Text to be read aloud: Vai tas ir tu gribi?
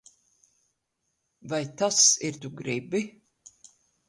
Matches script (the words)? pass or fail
pass